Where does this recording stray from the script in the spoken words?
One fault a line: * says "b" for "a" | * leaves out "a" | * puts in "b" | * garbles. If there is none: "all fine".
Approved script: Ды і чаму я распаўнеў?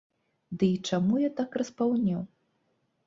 * puts in "так"